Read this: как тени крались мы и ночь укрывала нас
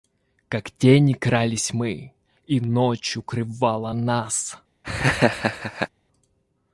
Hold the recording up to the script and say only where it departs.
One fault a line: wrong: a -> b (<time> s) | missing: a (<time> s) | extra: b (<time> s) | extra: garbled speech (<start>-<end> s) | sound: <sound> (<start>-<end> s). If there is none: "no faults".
sound: laugh (4.8-5.9 s)